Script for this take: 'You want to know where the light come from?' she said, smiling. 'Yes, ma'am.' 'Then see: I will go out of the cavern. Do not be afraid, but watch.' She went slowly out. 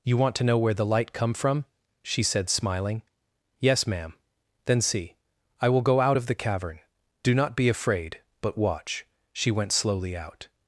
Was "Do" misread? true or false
false